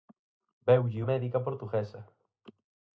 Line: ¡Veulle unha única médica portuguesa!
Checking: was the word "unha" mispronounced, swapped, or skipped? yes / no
yes